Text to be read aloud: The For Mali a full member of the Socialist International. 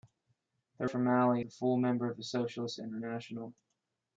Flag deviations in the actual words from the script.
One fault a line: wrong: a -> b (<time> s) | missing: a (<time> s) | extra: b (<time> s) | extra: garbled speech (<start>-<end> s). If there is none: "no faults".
no faults